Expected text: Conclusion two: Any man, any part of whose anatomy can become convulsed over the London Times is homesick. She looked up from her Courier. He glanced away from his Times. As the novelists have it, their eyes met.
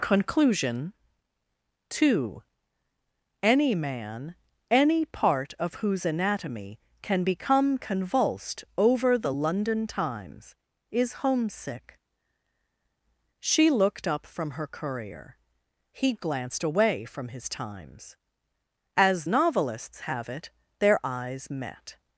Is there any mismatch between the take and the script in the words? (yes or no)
yes